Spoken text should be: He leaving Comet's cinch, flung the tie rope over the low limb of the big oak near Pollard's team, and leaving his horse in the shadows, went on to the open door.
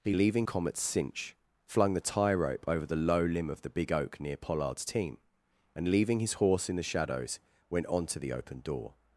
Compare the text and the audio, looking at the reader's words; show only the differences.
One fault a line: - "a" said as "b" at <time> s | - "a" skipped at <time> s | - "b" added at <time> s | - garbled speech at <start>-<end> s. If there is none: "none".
none